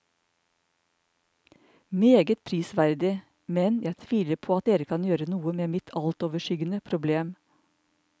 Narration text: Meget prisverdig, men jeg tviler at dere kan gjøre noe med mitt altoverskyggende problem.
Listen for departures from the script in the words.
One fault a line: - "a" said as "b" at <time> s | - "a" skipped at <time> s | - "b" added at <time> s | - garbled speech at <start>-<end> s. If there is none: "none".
- "på" added at 4.4 s